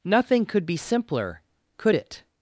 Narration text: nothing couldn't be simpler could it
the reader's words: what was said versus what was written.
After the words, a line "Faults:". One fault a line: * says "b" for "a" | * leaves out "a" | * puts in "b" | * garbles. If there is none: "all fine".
nothing could be simpler could it
Faults:
* says "could" for "couldn't"